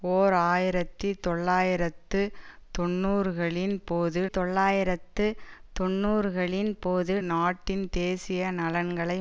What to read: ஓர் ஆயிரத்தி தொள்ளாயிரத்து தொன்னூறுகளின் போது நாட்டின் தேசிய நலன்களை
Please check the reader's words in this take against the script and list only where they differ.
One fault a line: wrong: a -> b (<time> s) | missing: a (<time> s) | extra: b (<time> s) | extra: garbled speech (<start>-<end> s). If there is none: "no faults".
extra: தொள்ளாயிரத்து தொன்னூறுகளின் போது (4.3 s)